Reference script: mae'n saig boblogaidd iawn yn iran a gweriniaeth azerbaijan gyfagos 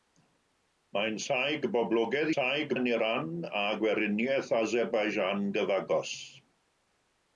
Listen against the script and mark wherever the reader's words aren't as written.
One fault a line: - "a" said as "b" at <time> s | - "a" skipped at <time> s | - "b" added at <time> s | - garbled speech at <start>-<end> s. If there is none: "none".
- "iawn" said as "saig" at 2.3 s